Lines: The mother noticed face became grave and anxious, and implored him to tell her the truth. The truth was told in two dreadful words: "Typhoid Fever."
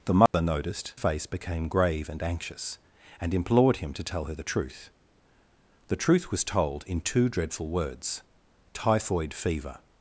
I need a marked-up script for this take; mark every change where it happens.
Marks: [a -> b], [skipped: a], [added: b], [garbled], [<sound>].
The mother [dropout] noticed face became grave and anxious, and implored him to tell her the truth. The truth was told in two dreadful words: "Typhoid Fever."